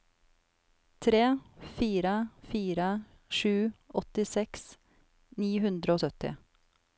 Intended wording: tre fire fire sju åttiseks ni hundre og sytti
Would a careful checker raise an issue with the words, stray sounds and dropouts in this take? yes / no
no